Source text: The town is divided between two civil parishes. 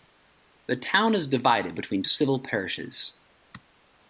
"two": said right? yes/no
no